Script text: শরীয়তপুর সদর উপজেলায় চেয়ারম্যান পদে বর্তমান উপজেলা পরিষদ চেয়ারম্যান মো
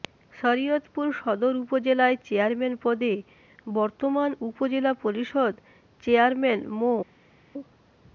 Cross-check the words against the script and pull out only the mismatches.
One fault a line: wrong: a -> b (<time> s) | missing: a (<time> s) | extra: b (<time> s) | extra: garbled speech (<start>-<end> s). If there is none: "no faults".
no faults